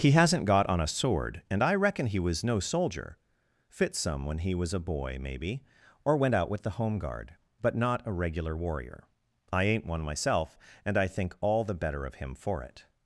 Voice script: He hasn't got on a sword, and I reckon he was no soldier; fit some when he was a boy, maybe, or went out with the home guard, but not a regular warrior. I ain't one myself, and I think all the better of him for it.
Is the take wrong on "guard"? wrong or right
right